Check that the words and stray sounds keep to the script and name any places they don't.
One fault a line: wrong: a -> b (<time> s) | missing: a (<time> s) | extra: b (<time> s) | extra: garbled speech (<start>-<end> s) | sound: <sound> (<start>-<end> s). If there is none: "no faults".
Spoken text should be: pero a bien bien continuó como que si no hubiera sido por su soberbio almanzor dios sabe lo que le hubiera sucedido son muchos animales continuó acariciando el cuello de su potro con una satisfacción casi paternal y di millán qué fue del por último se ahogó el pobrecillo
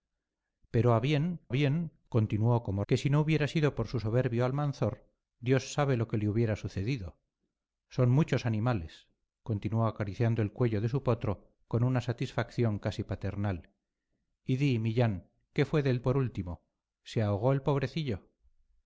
no faults